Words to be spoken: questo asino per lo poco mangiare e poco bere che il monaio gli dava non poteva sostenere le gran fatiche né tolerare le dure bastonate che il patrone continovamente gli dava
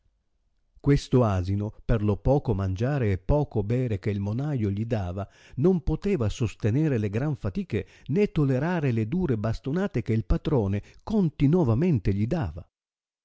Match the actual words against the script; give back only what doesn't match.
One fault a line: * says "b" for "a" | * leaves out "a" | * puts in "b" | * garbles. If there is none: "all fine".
all fine